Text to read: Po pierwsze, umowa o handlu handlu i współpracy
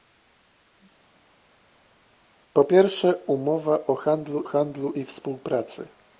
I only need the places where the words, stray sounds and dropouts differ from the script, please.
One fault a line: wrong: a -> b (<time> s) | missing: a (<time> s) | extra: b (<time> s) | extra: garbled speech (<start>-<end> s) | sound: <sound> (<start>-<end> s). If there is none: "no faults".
no faults